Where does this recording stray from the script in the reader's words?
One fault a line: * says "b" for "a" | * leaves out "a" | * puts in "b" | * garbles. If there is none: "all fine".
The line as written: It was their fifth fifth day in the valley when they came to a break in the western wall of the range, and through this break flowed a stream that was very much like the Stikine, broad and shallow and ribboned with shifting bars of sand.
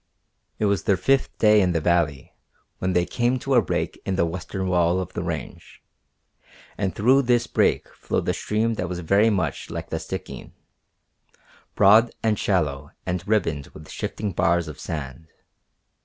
* leaves out "fifth"